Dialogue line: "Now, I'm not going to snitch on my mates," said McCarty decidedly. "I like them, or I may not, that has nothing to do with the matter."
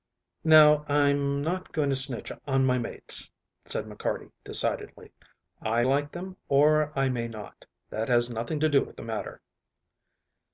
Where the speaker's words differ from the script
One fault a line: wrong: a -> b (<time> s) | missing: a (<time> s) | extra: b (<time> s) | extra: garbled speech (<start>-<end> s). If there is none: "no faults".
no faults